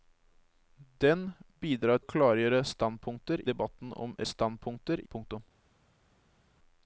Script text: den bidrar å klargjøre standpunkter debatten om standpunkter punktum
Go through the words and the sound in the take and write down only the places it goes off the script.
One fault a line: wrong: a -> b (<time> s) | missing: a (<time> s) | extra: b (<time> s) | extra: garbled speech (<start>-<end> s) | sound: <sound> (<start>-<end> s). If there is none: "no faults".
no faults